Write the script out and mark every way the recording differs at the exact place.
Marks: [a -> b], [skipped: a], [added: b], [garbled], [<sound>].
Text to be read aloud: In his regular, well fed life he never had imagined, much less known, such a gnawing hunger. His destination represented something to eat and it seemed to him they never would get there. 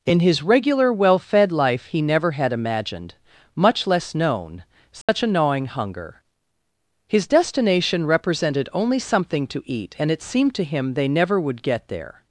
In his regular, well fed life he never had imagined, much less known, such [dropout] a gnawing hunger. His destination represented [added: only] something to eat and it seemed to him they never would get there.